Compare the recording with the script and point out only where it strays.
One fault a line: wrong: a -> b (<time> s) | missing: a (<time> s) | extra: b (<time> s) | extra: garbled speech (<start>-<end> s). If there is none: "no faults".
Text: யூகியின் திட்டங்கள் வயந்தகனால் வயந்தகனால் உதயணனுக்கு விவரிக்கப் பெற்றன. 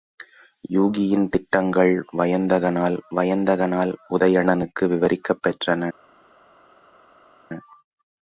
no faults